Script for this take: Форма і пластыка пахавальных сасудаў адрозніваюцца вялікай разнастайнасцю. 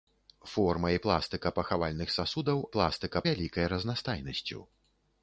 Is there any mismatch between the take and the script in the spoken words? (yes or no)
yes